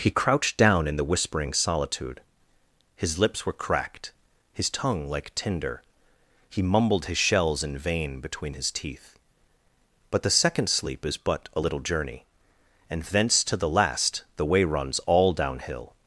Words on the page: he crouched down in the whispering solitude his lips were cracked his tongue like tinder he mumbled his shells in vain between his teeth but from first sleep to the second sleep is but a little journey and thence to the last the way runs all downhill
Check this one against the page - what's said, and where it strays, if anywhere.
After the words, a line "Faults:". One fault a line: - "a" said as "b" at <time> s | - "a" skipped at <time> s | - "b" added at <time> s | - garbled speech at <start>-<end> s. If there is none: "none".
he crouched down in the whispering solitude his lips were cracked his tongue like tinder he mumbled his shells in vain between his teeth but the second sleep is but a little journey and thence to the last the way runs all downhill
Faults:
- "from first sleep to" skipped at 10.2 s